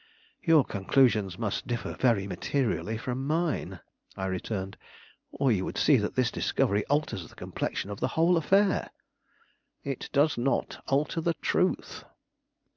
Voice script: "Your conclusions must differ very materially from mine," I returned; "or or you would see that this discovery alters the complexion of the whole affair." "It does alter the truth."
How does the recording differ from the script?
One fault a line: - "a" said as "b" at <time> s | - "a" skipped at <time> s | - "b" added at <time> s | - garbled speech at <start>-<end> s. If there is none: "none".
- "or" skipped at 5.5 s
- "not" added at 10.4 s